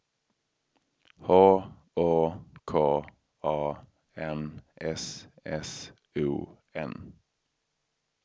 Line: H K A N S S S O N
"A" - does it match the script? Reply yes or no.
yes